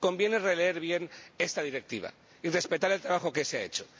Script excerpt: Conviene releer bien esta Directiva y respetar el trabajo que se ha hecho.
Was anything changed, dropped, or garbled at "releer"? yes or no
no